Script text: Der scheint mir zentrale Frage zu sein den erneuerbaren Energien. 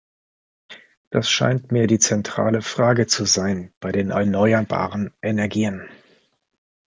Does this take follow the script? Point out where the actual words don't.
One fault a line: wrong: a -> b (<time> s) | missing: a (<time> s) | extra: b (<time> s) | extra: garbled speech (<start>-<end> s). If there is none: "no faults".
wrong: Der -> Das (1.1 s)
extra: die (1.9 s)
extra: bei (3.8 s)